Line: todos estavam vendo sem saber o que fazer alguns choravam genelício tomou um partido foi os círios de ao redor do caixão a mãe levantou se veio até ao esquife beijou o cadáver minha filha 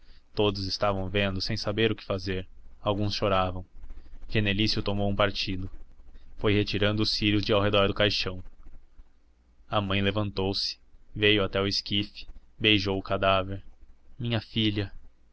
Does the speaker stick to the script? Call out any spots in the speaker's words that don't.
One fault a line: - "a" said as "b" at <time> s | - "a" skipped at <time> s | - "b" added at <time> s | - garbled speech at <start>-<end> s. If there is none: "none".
- "retirando" added at 6.5 s